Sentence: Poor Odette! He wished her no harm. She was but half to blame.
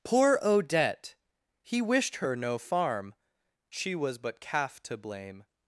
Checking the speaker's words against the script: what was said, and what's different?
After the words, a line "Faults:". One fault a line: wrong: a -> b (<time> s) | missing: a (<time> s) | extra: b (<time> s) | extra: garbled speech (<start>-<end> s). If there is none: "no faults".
Poor Odette! He wished her no farm. She was but calf to blame.
Faults:
wrong: harm -> farm (2.6 s)
wrong: half -> calf (4.4 s)